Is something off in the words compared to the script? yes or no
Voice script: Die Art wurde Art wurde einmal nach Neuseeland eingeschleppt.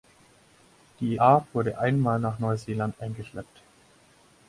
yes